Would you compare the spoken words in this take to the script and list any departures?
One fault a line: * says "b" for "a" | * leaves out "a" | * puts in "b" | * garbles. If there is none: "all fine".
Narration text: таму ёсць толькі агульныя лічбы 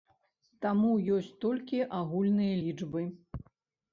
all fine